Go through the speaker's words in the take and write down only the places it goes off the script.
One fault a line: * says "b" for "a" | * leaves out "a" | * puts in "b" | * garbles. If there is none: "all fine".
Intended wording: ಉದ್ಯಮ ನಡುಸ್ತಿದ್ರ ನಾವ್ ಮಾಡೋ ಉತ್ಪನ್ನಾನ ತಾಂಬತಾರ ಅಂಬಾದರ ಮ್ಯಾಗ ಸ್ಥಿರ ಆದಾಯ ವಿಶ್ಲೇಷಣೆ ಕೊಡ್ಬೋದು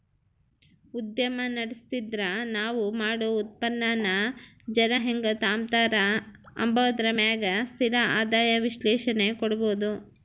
* puts in "ಜನ ಹೆಂಗ್"